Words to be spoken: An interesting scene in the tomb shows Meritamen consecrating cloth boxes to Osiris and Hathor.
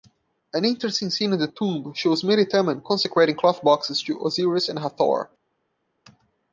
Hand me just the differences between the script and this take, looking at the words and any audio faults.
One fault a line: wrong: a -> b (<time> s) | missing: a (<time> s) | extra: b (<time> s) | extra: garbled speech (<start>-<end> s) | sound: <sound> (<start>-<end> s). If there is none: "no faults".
no faults